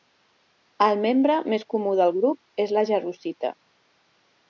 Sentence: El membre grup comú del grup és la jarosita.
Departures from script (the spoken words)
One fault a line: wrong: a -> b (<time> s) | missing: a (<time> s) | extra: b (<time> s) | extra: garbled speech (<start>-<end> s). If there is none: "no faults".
wrong: grup -> més (1.6 s)